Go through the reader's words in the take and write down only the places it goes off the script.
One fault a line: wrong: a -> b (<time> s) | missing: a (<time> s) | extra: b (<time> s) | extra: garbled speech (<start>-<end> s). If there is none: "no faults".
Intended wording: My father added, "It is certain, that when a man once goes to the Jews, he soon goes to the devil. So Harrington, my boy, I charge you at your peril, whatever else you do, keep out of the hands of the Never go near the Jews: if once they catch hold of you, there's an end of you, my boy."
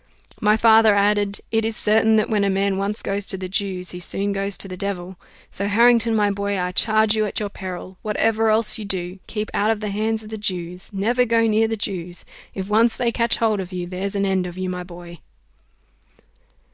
extra: Jews (10.4 s)